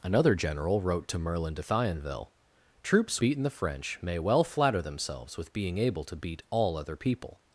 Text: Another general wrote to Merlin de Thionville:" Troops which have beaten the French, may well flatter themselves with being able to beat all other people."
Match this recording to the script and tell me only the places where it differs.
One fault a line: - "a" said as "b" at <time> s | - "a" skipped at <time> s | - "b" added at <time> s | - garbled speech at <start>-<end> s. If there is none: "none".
- "which have" skipped at 3.2 s